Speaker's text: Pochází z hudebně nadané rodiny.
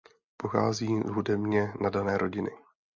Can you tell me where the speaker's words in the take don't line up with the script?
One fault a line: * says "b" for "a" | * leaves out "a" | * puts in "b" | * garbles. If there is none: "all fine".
all fine